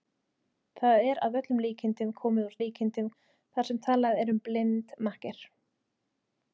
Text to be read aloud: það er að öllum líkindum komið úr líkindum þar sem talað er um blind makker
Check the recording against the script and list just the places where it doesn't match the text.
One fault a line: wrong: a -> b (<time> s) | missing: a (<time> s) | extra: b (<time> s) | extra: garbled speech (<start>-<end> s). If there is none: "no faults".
no faults